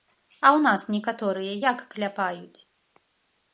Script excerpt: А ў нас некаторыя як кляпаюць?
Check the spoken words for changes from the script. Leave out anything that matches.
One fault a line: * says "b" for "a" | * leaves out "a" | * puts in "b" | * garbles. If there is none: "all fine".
all fine